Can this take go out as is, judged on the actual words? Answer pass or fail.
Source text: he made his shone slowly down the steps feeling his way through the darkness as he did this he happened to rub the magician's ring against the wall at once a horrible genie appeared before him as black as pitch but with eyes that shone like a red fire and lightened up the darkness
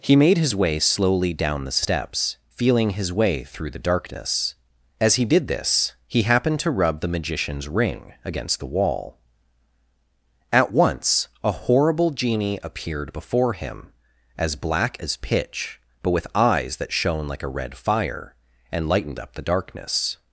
fail